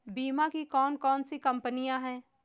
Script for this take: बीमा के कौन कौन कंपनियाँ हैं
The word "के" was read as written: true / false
false